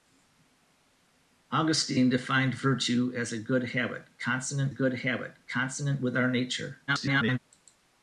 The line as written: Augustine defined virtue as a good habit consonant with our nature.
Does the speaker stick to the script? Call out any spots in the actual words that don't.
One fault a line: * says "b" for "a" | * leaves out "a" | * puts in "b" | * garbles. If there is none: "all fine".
* puts in "good habit consonant"
* garbles